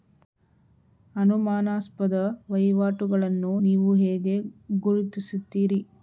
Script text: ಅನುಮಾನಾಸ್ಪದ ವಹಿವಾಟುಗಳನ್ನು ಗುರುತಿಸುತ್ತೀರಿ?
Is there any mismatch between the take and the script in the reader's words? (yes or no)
yes